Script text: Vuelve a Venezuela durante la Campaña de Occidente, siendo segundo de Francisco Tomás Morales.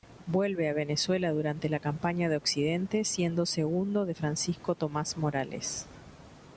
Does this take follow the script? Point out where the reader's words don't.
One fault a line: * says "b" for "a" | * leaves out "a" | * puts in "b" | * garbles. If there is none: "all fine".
all fine